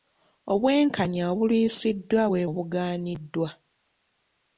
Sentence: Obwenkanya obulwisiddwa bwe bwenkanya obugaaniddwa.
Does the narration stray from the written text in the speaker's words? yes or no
yes